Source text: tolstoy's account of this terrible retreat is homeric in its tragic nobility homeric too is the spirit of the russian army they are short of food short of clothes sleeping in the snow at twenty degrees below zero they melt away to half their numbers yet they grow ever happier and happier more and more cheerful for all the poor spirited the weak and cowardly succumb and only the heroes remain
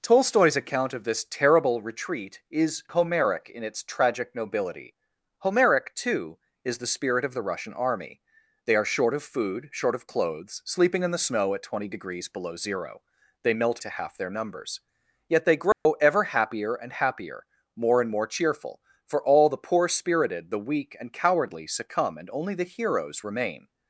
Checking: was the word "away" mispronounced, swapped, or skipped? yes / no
yes